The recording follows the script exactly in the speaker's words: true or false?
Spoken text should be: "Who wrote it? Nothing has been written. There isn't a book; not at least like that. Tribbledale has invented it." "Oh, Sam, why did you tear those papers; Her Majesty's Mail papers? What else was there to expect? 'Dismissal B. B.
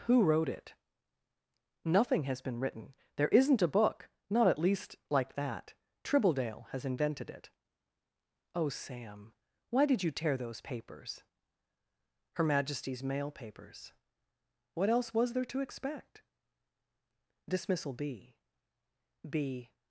true